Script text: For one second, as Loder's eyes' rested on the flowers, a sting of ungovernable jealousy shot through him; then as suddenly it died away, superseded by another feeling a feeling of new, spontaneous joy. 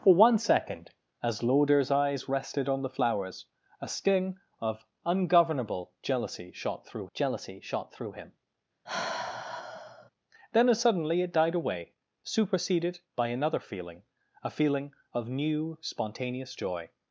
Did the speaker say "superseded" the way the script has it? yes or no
yes